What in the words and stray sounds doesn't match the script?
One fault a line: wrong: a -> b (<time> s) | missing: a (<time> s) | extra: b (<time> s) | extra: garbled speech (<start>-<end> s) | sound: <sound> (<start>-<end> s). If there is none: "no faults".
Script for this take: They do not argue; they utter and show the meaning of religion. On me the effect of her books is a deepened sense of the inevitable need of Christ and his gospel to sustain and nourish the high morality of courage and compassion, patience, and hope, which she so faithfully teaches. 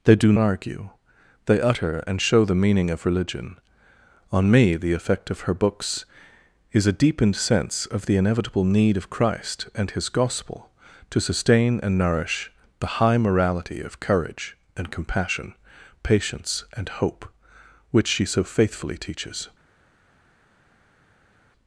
missing: not (0.3 s)